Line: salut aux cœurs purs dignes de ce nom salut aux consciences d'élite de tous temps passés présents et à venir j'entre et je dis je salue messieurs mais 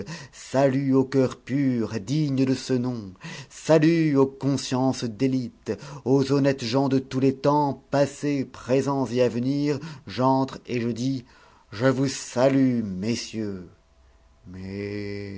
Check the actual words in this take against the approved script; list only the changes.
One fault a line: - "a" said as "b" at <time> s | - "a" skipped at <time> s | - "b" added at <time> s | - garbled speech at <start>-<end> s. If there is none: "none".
- "aux honnêtes gens" added at 6.0 s
- "les" added at 7.2 s
- "vous" added at 11.8 s